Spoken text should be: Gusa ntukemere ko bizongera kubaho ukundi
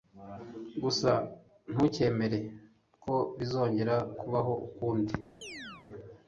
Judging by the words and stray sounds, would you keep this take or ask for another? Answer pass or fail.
fail